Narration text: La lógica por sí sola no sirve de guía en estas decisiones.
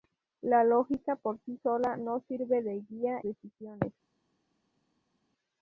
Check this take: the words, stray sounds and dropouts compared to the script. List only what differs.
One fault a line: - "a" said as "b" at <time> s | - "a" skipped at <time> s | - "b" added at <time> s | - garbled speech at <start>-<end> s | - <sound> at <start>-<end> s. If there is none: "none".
- "en estas" skipped at 3.2 s